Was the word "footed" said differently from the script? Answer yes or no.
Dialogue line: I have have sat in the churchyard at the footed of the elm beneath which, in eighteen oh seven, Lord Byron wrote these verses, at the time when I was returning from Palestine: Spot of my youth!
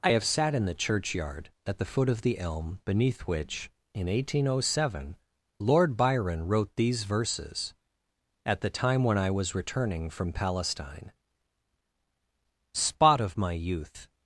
yes